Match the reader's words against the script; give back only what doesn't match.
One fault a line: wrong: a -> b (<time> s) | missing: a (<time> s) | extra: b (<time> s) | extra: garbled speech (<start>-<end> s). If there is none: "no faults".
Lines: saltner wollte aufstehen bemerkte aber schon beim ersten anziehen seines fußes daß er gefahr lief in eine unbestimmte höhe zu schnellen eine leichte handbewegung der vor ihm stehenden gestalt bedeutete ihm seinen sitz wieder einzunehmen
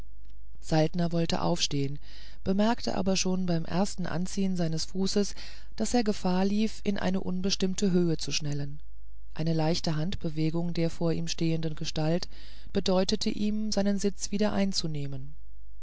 no faults